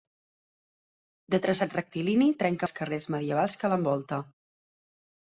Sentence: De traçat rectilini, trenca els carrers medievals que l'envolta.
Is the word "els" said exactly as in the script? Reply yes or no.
yes